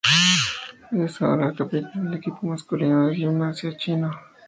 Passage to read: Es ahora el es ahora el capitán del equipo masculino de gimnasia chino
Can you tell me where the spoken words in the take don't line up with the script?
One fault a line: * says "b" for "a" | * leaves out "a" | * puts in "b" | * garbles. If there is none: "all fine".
* leaves out "es ahora el"